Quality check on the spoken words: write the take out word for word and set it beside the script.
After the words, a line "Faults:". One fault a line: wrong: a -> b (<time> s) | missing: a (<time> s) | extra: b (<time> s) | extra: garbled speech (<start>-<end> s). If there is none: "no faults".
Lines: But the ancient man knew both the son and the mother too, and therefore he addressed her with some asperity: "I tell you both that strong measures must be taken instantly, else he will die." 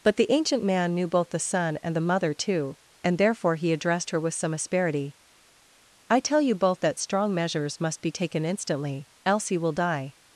But the ancient man knew both the son and the mother too, and therefore he addressed her with some asperity: "I tell you both that strong measures must be taken instantly, else he will die."
Faults:
no faults